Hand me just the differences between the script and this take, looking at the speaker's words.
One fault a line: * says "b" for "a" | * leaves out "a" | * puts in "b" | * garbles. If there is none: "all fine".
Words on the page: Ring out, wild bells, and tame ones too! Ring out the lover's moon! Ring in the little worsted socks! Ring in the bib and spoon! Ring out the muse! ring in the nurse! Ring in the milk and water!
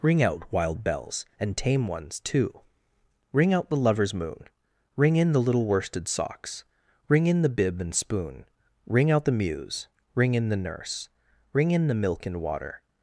all fine